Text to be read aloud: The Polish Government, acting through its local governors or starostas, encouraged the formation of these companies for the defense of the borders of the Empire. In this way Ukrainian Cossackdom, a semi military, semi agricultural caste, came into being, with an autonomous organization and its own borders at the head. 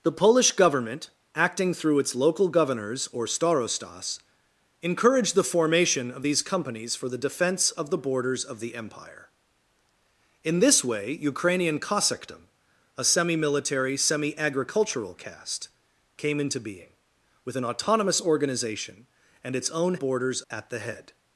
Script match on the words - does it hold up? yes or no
yes